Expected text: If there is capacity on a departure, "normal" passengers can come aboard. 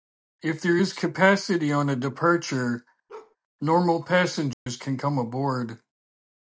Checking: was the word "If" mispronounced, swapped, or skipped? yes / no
no